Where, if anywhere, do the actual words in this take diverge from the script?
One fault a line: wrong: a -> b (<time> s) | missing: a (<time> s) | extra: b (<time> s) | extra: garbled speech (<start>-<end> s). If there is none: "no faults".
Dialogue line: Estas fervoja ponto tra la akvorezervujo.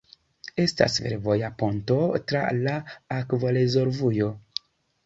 no faults